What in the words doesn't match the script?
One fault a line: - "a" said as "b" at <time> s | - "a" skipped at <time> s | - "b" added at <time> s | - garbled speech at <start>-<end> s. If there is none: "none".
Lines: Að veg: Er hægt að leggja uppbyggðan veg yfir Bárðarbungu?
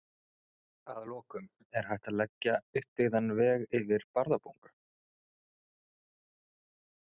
- "veg" said as "lokum" at 1.1 s